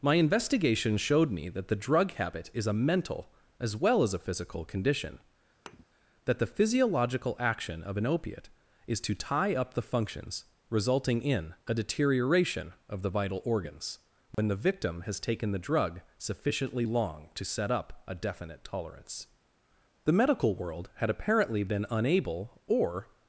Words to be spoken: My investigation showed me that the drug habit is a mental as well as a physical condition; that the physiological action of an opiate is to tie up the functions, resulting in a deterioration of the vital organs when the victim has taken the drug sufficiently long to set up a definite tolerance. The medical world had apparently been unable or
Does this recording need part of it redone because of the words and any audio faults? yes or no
yes